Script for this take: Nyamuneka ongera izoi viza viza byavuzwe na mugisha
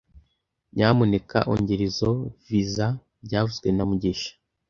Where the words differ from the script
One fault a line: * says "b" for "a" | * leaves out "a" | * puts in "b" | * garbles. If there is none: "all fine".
* leaves out "viza"